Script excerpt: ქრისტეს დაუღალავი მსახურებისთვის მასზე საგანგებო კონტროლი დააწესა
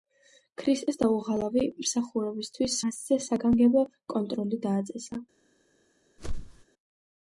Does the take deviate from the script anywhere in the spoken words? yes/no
no